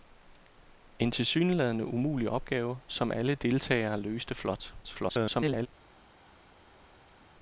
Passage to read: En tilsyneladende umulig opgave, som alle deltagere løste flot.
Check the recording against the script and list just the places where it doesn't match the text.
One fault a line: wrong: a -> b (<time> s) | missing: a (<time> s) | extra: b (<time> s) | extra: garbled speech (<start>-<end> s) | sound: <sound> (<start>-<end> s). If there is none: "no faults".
extra: garbled speech (4.8-5.7 s)